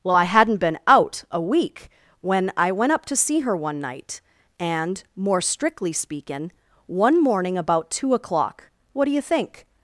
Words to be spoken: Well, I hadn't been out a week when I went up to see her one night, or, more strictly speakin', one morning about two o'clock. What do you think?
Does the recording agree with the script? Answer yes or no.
no